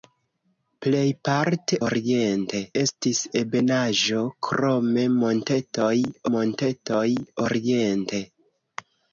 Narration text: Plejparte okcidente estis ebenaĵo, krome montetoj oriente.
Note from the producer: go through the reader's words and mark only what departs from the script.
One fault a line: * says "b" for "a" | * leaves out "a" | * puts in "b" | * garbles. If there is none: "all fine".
* says "oriente" for "okcidente"
* puts in "montetoj"